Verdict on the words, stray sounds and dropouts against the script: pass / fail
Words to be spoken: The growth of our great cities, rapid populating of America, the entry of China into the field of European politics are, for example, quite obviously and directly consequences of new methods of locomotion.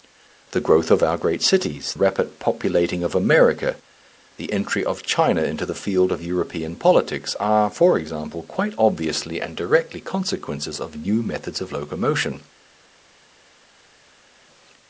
pass